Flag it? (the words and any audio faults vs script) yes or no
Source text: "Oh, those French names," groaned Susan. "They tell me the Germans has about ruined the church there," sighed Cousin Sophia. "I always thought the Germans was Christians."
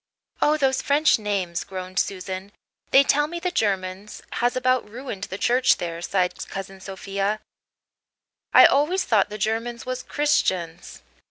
no